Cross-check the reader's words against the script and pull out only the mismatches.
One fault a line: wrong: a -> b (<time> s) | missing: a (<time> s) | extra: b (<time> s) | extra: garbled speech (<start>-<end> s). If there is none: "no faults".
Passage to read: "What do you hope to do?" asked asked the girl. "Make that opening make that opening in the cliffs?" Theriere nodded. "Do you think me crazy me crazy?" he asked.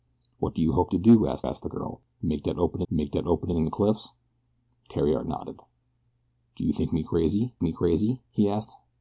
no faults